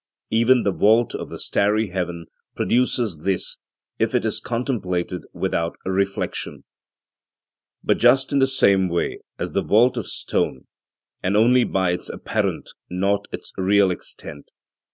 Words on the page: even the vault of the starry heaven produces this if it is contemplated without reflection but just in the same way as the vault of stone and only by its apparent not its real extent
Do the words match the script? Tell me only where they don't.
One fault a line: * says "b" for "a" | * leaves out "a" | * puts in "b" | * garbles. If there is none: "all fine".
all fine